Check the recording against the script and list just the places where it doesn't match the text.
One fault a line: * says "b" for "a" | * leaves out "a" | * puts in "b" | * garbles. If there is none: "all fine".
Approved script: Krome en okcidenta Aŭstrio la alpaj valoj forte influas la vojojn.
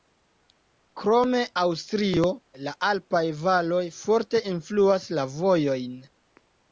* leaves out "en okcidenta"